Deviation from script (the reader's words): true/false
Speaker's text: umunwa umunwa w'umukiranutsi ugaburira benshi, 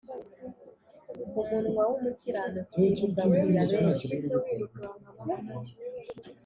true